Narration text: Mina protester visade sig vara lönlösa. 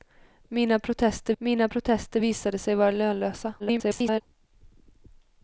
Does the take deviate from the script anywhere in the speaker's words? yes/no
yes